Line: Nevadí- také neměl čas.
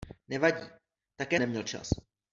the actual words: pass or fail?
pass